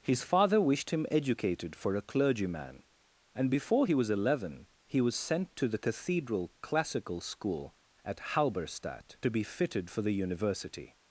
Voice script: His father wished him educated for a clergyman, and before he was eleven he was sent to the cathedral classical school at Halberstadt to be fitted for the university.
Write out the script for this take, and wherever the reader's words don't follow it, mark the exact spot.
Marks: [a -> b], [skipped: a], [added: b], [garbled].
His father wished him educated for a clergyman, and before he was eleven he was sent to the cathedral classical school at Halberstadt to be fitted for the university.